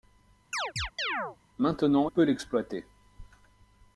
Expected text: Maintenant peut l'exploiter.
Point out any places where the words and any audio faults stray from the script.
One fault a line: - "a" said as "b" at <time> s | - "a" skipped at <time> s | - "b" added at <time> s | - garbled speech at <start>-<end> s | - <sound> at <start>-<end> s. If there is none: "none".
- chirp at 0.5-1.4 s